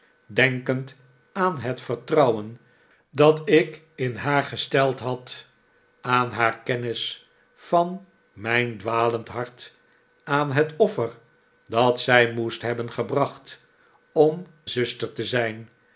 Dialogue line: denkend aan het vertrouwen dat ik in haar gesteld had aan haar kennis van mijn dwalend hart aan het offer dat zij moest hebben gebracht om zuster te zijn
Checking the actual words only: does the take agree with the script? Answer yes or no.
yes